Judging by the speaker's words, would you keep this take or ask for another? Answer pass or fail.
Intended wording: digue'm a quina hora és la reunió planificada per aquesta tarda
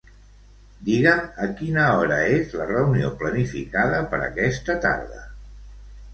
pass